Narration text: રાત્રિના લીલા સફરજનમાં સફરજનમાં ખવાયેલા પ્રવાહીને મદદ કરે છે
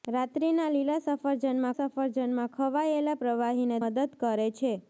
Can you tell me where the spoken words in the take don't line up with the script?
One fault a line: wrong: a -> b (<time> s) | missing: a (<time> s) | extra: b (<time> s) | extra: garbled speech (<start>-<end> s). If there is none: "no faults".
no faults